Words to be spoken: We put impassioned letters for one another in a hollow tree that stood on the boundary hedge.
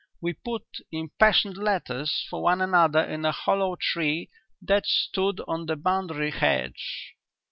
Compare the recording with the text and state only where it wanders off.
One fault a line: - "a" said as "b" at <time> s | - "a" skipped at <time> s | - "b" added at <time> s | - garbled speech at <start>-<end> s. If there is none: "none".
none